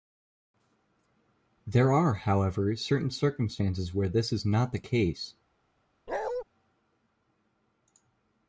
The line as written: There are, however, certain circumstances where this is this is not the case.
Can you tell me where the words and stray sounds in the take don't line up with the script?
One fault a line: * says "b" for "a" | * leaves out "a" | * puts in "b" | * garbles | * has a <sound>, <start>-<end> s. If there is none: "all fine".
* leaves out "this is"
* has a bark, 6.1-6.4 s